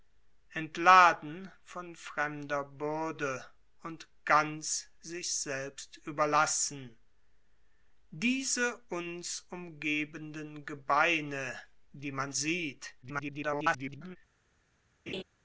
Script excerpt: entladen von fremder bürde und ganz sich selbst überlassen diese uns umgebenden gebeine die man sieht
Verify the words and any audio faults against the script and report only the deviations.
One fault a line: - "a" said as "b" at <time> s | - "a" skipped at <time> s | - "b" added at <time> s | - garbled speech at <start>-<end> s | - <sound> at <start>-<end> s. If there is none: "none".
- garbled speech at 13.0-14.2 s
- laugh at 15.1-15.2 s